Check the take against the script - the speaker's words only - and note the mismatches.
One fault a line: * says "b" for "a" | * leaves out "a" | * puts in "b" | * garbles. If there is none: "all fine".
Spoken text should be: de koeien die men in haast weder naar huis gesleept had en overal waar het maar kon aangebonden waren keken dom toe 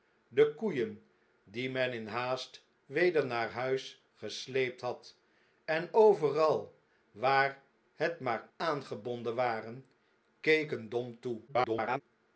* leaves out "kon"
* garbles